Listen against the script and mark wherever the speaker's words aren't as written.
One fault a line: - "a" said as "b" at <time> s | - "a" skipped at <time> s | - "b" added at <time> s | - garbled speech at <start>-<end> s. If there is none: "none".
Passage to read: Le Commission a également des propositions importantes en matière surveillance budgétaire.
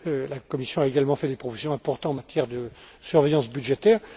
- "Le" said as "La" at 0.1 s
- "fait" added at 1.1 s
- "de" added at 2.5 s